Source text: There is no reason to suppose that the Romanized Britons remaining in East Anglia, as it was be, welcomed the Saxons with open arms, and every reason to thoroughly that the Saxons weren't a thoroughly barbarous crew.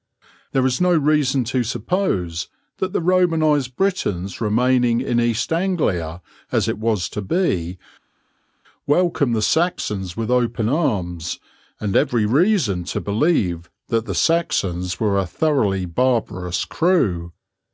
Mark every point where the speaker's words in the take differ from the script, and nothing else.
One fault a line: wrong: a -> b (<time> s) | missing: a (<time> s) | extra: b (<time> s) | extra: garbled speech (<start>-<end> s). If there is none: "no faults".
extra: to (7.1 s)
wrong: thoroughly -> believe (13.0 s)
wrong: weren't -> were (15.0 s)